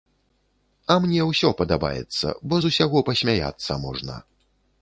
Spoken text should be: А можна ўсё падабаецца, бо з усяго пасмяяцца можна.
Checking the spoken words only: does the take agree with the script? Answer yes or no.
no